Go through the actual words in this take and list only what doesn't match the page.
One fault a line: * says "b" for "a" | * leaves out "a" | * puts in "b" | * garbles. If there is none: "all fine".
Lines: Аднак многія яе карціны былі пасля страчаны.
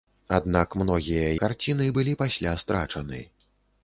* leaves out "яе"